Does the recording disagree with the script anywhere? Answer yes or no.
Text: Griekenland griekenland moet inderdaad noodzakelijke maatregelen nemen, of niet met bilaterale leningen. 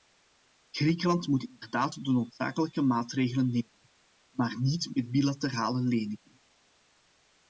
yes